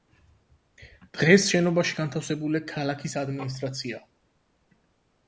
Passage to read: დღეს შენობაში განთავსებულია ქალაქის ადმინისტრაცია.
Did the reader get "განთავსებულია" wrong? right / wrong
right